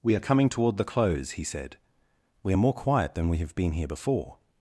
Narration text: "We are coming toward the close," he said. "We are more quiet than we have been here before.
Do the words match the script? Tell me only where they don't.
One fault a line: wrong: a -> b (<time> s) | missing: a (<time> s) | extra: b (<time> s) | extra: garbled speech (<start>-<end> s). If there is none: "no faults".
no faults